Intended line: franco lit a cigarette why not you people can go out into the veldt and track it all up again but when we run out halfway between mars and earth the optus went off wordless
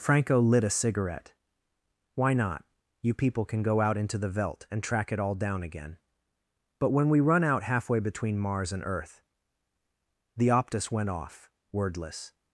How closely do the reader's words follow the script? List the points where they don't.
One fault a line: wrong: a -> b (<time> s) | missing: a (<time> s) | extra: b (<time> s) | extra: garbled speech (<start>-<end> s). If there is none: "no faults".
wrong: up -> down (5.3 s)